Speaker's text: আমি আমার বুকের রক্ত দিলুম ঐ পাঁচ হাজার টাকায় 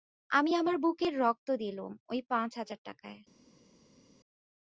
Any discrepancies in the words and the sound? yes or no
no